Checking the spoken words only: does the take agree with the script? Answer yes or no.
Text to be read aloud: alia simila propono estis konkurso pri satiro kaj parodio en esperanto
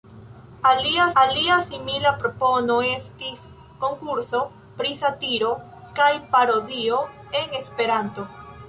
no